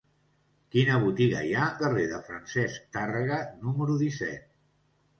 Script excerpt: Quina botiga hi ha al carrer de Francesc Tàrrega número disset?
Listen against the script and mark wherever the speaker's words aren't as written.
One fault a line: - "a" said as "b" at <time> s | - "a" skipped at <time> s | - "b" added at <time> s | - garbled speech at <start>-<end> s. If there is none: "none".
- "al" skipped at 1.7 s